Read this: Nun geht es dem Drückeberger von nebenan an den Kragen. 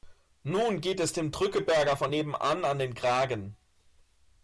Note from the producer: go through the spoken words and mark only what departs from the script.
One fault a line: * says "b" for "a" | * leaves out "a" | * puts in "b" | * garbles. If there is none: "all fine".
all fine